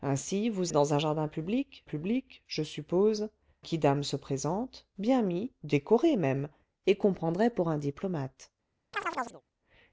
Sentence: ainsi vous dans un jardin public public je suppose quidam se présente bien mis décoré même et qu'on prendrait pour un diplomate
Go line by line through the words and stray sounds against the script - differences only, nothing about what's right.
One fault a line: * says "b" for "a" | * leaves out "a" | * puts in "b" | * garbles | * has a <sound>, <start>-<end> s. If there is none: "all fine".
* has a chirp, 8.9-9.4 s